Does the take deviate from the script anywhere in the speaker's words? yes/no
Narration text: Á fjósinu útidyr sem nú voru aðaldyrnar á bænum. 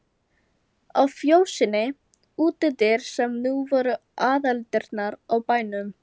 no